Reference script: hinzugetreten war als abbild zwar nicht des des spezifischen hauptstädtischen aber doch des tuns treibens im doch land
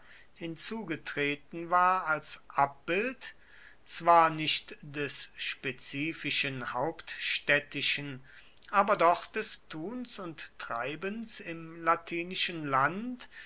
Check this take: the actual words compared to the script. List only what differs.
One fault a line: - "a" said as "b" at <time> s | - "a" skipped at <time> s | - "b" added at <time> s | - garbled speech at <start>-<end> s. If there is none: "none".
- "des" skipped at 5.3 s
- "und" added at 10.2 s
- "doch" said as "latinischen" at 11.8 s